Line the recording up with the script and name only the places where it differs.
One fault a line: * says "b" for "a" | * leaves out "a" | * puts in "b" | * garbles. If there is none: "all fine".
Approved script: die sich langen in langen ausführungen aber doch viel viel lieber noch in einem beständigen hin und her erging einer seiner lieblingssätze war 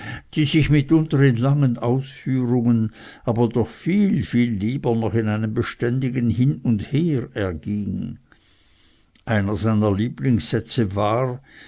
* says "mitunter" for "langen"